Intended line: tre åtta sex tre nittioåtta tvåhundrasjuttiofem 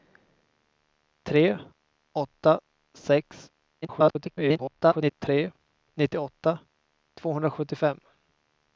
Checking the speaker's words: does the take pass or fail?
fail